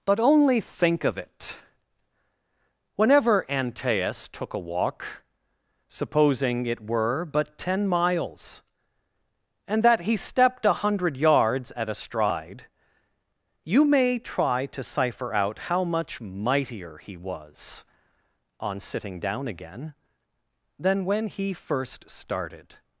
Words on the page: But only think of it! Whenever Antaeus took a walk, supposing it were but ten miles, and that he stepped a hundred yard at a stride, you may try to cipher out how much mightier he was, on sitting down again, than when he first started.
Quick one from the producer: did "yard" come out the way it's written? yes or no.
no